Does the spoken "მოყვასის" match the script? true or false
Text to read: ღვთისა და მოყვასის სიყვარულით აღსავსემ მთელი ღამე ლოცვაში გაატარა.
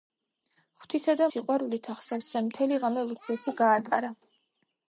false